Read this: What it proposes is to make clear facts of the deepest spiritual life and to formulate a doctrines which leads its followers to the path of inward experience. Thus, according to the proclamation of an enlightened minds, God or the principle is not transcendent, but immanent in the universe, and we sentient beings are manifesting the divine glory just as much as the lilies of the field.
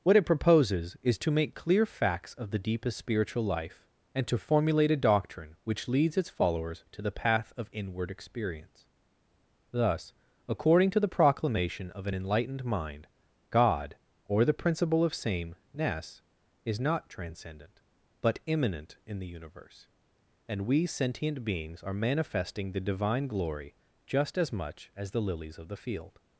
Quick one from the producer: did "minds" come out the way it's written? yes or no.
no